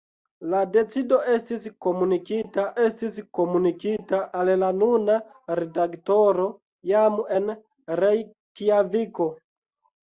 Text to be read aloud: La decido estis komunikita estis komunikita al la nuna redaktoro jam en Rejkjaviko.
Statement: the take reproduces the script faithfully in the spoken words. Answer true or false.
true